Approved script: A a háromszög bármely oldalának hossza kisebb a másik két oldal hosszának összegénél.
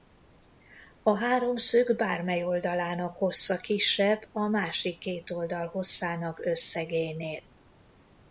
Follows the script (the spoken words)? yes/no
no